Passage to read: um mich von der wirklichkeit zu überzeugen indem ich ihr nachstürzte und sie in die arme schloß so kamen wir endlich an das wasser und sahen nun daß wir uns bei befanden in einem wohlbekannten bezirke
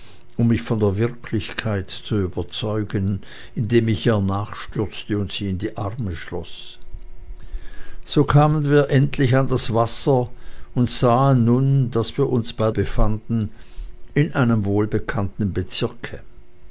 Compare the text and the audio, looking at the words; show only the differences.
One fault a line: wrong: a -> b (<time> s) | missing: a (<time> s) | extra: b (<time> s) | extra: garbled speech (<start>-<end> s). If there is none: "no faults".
no faults